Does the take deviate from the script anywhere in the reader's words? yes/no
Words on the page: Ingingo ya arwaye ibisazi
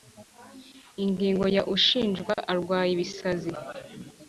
yes